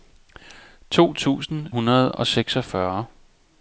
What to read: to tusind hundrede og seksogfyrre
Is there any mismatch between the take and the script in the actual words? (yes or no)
no